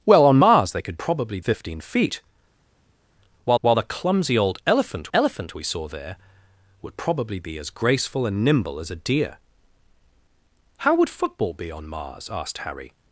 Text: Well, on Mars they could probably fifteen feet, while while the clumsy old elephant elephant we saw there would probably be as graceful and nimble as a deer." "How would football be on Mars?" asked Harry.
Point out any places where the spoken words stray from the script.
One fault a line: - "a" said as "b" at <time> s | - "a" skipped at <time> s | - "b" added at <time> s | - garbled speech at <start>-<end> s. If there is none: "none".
none